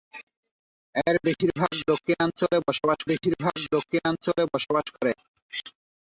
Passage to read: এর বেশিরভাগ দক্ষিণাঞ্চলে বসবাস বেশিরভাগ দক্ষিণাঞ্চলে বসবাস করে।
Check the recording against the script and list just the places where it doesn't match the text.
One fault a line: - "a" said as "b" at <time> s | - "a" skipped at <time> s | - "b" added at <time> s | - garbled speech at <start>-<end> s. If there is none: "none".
none